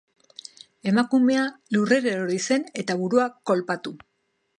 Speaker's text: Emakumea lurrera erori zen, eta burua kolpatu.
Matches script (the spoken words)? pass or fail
pass